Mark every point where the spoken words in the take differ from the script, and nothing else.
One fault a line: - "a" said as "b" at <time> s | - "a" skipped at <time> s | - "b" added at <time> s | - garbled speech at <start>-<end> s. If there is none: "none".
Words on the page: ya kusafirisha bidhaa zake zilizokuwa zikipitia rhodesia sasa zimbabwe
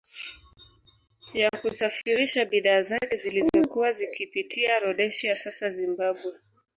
none